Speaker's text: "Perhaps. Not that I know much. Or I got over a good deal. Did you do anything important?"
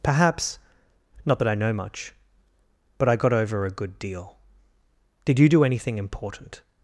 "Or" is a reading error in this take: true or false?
true